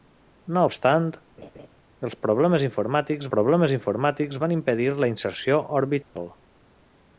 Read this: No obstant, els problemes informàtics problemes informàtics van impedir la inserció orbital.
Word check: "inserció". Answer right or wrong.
right